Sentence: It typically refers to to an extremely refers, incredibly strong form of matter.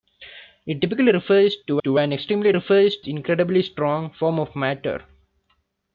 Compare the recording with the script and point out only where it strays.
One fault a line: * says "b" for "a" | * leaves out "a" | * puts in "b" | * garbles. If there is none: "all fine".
all fine